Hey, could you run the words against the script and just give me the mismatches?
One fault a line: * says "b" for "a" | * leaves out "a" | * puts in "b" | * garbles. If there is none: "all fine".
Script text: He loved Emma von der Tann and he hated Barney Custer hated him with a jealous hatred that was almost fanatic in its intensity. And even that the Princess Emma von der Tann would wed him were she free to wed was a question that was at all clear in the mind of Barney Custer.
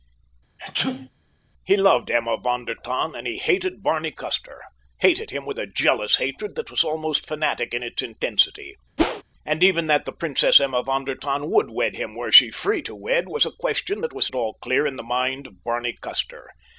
all fine